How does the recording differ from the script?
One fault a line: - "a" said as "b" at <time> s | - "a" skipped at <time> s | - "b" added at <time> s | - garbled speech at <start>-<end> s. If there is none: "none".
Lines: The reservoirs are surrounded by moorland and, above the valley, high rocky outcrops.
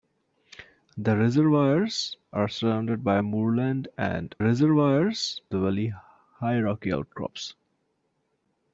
- "above" said as "reservoirs" at 4.4 s